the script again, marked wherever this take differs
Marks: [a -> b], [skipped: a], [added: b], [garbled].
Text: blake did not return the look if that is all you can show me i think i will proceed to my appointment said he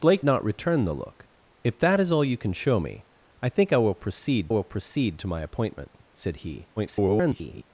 blake [skipped: did] not return the look if that is all you can show me i think i will proceed [added: will proceed] to my appointment said he [garbled]